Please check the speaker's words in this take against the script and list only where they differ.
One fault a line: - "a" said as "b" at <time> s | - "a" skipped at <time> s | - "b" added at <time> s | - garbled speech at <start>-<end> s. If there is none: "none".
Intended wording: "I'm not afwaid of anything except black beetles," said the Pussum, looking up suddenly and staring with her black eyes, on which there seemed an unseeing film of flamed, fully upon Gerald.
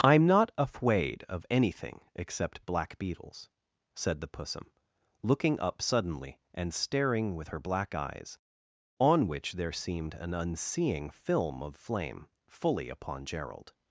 - "flamed" said as "flame" at 11.7 s